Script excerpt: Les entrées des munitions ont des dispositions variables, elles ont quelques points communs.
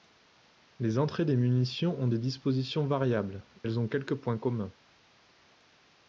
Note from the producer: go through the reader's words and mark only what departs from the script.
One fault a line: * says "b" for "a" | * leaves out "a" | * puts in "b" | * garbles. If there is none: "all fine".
all fine